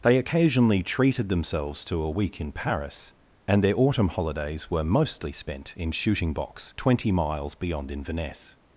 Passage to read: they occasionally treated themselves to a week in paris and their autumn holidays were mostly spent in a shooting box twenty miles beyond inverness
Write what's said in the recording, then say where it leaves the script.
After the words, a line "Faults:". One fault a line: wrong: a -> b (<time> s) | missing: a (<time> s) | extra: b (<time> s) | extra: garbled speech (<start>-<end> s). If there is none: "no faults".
they occasionally treated themselves to a week in paris and their autumn holidays were mostly spent in shooting box twenty miles beyond inverness
Faults:
missing: a (5.9 s)